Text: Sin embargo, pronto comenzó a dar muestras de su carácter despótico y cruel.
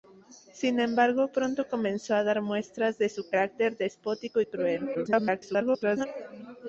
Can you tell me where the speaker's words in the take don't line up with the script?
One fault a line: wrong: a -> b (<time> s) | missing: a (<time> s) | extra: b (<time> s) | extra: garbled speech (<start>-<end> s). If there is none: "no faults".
extra: garbled speech (4.9-6.1 s)